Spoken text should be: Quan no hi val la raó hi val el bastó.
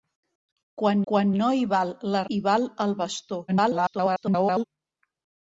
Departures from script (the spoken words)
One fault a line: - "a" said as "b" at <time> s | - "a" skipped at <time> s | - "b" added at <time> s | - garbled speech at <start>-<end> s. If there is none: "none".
- "quan" added at 1.1 s
- "raó" skipped at 2.2 s
- garbled speech at 3.5-4.6 s